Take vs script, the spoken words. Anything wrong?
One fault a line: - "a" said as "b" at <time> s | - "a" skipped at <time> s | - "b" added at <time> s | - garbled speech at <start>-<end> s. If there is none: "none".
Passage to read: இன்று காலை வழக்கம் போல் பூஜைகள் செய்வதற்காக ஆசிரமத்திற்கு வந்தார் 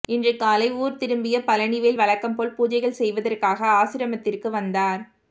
- "ஊர் திரும்பிய பழனிவேல்" added at 0.8 s